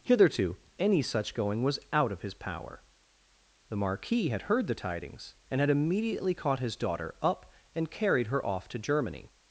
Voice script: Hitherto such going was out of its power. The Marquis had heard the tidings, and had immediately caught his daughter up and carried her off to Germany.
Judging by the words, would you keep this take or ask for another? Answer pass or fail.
fail